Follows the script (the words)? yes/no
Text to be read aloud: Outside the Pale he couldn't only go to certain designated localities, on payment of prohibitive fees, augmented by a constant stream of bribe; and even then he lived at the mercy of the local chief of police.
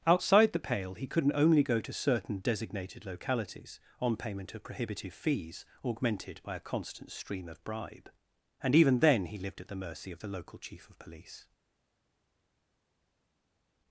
yes